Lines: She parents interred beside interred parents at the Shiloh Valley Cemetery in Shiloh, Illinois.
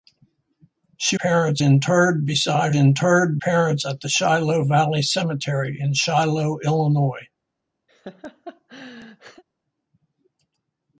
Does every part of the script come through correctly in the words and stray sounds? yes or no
no